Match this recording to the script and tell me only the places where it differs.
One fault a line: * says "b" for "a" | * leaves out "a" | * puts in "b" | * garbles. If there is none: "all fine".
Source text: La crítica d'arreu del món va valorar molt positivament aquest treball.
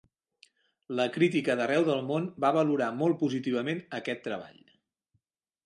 all fine